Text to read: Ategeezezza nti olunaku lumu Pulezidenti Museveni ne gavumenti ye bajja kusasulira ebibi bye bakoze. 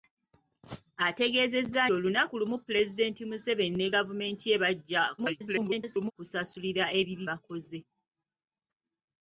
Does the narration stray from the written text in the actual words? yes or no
yes